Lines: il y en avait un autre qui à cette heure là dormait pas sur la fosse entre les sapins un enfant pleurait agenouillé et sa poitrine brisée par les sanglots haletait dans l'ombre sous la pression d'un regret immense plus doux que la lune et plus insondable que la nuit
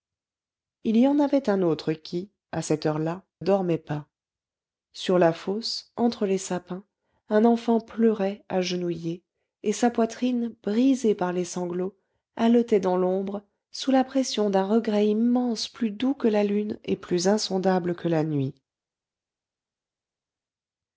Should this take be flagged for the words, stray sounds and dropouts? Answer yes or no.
no